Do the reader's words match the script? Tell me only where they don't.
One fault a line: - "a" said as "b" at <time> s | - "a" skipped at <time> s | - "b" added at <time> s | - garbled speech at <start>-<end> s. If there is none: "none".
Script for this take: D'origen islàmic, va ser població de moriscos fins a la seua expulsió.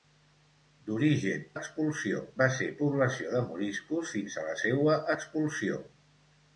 - "islàmic" said as "expulsió" at 1.6 s